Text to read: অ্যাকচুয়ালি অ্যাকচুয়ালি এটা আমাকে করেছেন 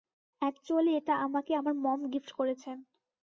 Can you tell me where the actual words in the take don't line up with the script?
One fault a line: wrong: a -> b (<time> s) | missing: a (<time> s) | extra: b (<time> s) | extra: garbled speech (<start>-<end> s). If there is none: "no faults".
missing: অ্যাকচুয়ালি (0.9 s)
extra: আমার মম গিফট (1.6 s)